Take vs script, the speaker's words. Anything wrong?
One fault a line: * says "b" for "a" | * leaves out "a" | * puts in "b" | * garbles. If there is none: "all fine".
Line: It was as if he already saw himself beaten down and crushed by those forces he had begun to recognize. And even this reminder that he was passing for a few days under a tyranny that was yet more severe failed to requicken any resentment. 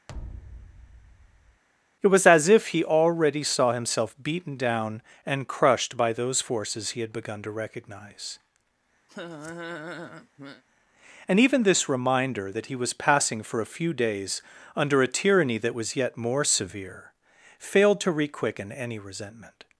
all fine